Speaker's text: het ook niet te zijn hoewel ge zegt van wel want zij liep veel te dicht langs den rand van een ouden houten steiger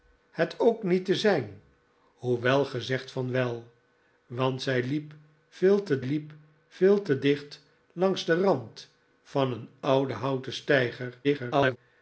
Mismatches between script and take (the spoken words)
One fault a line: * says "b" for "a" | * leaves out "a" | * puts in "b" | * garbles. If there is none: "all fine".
* puts in "liep veel te"
* garbles